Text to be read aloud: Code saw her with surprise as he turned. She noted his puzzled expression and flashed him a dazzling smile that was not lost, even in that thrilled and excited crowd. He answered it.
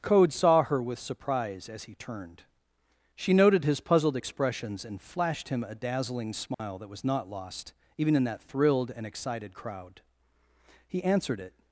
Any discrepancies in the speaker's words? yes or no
yes